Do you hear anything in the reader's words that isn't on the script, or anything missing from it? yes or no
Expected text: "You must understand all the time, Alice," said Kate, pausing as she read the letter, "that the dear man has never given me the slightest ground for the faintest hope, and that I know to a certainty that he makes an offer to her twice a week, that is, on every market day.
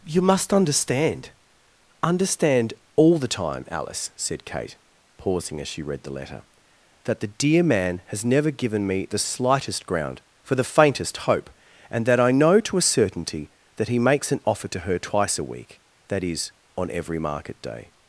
yes